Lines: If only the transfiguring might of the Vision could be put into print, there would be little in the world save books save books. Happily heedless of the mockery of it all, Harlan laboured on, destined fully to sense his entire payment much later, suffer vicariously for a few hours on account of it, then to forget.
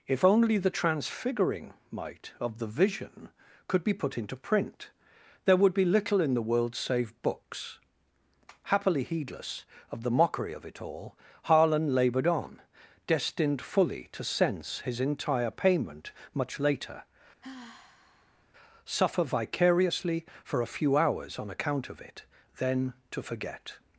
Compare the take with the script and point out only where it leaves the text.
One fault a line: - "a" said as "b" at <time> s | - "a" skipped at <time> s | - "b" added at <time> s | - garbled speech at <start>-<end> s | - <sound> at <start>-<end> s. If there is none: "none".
- "save books" skipped at 7.8 s
- sigh at 17.4-18.5 s